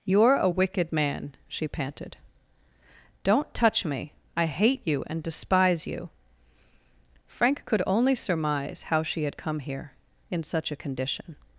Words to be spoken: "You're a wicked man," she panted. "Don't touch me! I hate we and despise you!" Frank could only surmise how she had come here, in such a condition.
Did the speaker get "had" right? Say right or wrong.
right